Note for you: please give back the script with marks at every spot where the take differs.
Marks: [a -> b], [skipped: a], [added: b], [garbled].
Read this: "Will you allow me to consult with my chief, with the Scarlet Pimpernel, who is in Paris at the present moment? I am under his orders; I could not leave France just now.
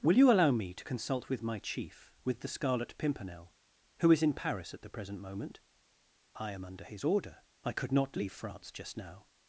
"Will you allow me to consult with my chief, with the Scarlet Pimpernel, who is in Paris at the present moment? I am under his [orders; -> order] I could not leave France just now.